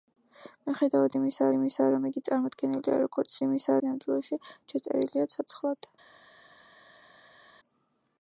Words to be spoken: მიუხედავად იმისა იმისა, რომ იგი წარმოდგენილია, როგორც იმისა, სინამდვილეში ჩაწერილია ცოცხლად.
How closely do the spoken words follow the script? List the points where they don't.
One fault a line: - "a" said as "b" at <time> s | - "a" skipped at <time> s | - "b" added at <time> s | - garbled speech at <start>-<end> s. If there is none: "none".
none